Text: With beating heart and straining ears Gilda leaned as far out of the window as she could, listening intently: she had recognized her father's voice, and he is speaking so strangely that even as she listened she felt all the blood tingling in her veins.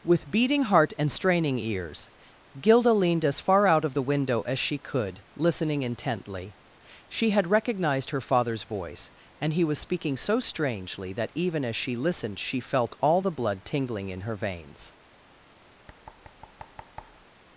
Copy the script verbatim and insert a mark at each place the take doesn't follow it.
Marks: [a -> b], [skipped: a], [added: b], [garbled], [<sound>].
With beating heart and straining ears Gilda leaned as far out of the window as she could, listening intently: she had recognized her father's voice, and he [is -> was] speaking so strangely that even as she listened she felt all the blood tingling in her veins. [thud]